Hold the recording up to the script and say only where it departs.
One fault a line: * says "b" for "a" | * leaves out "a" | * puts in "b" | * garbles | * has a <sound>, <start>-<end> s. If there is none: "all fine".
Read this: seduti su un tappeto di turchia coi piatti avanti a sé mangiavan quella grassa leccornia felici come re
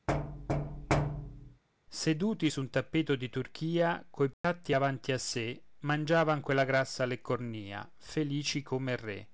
* has a thud, 0.1-1.6 s
* has a dropout, 4.3-4.4 s